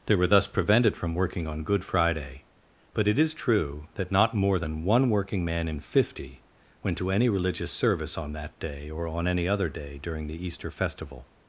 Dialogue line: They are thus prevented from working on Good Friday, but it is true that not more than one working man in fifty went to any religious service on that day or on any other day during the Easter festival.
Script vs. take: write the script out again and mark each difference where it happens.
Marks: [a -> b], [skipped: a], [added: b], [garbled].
They [are -> were] thus prevented from working on Good Friday, but it is true that not more than one working man in fifty went to any religious service on that day or on any other day during the Easter festival.